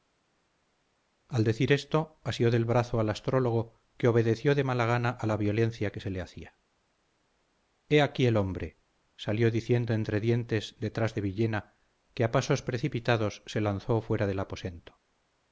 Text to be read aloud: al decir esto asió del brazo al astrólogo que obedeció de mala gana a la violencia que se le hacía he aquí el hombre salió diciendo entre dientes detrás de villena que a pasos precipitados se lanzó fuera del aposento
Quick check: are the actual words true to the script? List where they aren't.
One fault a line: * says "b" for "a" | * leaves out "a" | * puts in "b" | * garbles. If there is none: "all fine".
all fine